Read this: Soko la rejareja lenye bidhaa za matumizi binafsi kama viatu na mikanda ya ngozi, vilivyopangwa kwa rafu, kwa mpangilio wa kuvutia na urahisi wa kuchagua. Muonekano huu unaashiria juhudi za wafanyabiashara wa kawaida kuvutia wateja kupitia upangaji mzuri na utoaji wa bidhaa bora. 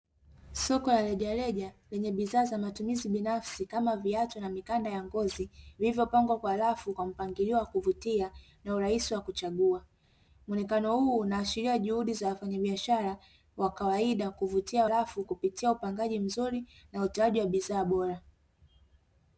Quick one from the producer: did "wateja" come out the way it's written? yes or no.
no